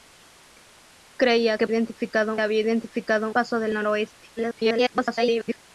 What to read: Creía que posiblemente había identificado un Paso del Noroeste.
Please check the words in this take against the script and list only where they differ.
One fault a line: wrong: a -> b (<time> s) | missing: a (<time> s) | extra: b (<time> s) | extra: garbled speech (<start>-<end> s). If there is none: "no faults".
wrong: posiblemente -> identificado (1.7 s)
missing: un (3.3 s)
extra: garbled speech (4.4-5.6 s)